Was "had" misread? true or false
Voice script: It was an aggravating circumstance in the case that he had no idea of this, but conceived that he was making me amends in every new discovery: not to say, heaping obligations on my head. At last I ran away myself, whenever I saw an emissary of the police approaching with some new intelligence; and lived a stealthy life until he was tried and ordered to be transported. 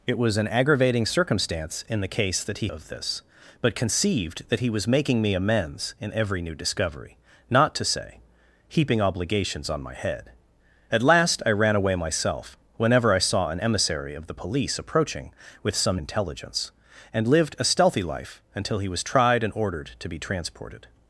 true